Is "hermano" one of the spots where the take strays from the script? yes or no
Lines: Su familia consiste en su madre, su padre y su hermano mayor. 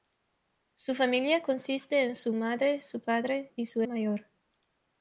yes